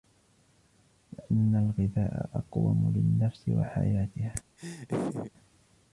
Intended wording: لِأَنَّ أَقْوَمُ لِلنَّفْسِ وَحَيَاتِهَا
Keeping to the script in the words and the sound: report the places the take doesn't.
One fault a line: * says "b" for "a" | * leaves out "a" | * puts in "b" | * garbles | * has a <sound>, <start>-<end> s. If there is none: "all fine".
* puts in "الْغِذَاءَ"
* has a laugh, 4.6-5.3 s